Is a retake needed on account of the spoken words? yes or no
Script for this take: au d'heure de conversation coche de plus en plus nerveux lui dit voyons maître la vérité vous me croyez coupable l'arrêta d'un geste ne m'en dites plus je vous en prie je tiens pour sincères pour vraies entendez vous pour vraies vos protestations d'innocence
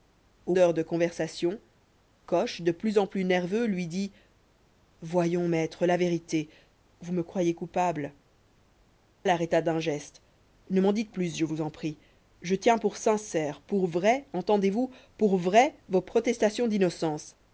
no